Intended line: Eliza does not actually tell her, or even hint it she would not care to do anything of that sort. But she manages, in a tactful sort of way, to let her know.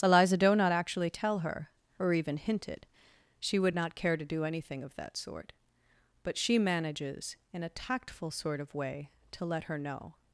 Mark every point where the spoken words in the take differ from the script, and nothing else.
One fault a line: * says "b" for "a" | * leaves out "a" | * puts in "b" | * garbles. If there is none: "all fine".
* says "doe" for "does"